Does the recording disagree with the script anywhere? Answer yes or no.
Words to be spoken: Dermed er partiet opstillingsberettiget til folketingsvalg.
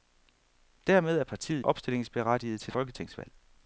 no